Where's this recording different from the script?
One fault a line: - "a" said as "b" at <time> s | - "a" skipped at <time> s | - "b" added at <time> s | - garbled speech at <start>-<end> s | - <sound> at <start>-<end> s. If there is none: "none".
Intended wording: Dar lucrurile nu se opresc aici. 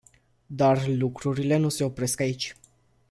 none